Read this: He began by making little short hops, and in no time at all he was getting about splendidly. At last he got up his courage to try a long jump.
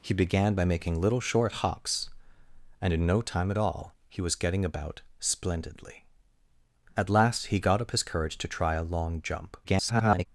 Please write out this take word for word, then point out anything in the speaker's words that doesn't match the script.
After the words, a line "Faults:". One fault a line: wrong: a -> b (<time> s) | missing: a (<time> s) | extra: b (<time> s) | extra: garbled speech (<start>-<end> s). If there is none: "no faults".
He began by making little short hops, and in no time at all he was getting about splendidly. At last he got up his courage to try a long jump. [garbled]
Faults:
extra: garbled speech (9.6-10.3 s)